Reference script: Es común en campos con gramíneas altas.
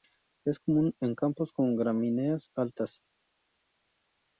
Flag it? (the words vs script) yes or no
no